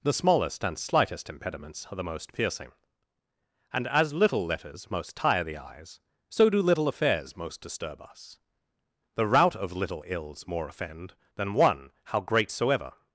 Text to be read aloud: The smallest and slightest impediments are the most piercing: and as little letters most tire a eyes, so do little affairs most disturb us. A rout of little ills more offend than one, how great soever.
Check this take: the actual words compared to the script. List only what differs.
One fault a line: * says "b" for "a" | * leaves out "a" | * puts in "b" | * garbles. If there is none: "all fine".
* says "the" for "a"
* says "The" for "A"